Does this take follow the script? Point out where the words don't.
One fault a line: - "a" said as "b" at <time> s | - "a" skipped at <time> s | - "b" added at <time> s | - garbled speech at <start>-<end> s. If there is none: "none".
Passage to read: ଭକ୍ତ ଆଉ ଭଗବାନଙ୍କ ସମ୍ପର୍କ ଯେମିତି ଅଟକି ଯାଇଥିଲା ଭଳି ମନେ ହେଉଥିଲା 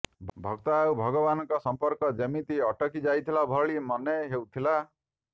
none